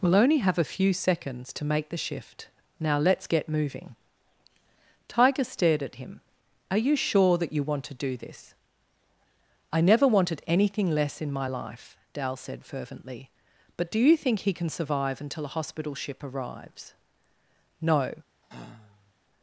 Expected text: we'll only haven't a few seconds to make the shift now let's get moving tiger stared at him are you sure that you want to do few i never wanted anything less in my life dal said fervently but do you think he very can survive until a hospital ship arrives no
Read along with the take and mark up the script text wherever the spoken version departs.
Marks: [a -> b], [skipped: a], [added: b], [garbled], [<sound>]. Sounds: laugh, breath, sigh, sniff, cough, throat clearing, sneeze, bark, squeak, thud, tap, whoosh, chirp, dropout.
we'll only [haven't -> have] a few seconds to make the shift now let's get moving tiger stared at him are you sure that you want to do [few -> this] i never wanted anything less in my life dal said fervently but do you think he [skipped: very] can survive until a hospital ship arrives no [sigh]